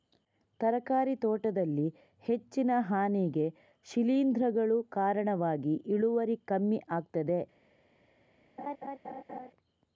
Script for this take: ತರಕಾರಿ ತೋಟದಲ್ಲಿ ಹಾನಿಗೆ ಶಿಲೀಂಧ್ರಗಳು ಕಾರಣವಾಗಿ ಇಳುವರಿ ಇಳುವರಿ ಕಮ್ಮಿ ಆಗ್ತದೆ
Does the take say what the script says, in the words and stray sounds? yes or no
no